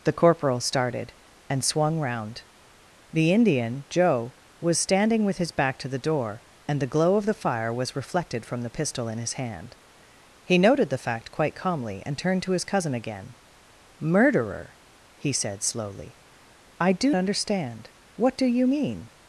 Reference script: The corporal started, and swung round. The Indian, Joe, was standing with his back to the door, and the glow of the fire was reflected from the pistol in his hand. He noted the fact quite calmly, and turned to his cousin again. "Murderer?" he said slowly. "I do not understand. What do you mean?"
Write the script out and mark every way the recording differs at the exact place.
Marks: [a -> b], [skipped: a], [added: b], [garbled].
The corporal started, and swung round. The Indian, Joe, was standing with his back to the door, and the glow of the fire was reflected from the pistol in his hand. He noted the fact quite calmly, and turned to his cousin again. "Murderer?" he said slowly. "I do [skipped: not] understand. What do you mean?"